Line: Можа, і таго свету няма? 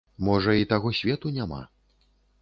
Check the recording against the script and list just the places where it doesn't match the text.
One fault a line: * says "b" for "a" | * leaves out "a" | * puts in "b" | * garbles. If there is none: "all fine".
all fine